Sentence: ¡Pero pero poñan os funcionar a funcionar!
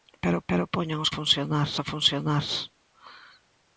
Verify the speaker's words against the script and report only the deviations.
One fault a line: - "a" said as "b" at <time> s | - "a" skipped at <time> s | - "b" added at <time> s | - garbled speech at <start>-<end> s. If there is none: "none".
none